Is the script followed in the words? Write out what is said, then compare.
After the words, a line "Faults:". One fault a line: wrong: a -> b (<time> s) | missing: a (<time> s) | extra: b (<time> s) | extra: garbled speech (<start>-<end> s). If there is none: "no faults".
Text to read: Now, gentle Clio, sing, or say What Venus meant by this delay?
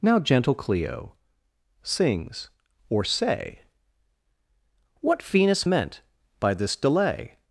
Now, gentle Clio, sings, or say What Venus meant by this delay?
Faults:
wrong: sing -> sings (1.8 s)